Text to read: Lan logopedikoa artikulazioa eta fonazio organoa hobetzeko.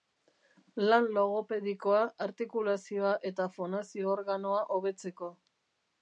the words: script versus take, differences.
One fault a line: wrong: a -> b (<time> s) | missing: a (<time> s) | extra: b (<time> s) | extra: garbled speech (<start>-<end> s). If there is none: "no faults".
no faults